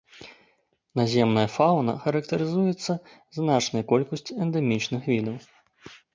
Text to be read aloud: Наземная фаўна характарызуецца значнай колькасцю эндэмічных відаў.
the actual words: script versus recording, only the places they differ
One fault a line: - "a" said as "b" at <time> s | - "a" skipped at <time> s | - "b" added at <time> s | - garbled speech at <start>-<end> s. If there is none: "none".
none